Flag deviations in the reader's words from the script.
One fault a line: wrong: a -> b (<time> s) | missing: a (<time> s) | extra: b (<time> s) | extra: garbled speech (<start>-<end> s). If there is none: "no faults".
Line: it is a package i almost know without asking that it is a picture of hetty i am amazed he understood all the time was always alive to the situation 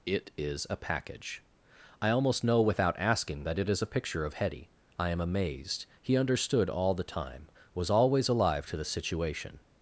no faults